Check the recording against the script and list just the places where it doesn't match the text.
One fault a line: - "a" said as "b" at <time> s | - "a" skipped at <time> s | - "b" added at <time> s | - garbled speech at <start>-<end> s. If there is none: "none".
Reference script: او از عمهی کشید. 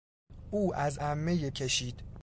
none